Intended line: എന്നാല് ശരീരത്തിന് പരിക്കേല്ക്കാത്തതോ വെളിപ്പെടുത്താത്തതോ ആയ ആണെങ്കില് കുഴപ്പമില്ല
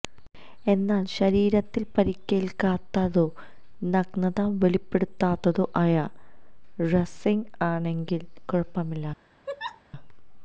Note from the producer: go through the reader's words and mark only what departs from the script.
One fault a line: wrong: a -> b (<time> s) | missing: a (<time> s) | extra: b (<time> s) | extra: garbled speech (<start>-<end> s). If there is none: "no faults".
extra: നഗ്നത (3.9 s)
extra: റസ്ലിംഗ് (6.9 s)